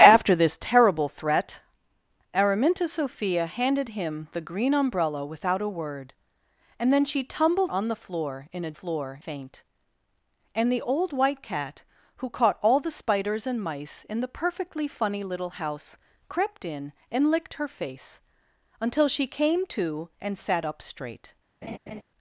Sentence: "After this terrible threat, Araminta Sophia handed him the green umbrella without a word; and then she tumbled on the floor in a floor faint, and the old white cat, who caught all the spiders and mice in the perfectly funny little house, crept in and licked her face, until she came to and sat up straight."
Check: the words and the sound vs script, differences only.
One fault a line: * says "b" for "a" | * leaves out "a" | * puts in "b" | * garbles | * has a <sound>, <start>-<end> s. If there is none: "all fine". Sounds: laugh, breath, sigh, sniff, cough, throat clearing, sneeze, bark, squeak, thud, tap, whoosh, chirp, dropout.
* has a laugh, 21.6-22.0 s